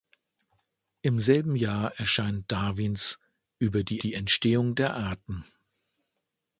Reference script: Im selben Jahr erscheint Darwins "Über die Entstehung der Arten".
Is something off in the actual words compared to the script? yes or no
yes